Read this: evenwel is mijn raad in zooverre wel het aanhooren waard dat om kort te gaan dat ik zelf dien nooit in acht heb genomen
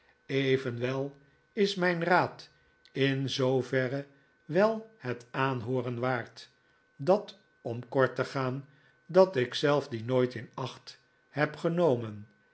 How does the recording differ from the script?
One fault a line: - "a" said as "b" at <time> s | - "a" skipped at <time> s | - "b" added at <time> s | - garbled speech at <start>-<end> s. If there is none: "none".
none